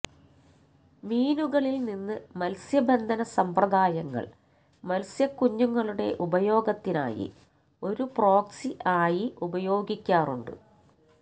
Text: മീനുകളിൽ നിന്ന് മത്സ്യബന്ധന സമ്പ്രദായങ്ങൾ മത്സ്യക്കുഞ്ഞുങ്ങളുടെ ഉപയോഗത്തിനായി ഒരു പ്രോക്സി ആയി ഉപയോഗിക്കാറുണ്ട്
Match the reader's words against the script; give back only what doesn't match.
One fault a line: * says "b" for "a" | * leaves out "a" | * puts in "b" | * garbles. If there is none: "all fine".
all fine